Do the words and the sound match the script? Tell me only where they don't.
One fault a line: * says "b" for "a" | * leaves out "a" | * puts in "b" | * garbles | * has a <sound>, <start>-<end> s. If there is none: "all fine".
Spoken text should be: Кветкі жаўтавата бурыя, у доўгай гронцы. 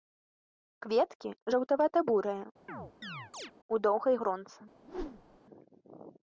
* has a chirp, 2.7-3.5 s
* has a whoosh, 4.8-5.4 s